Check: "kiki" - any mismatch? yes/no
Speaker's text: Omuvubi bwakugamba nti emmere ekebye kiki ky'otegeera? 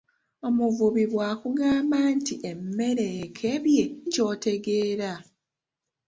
yes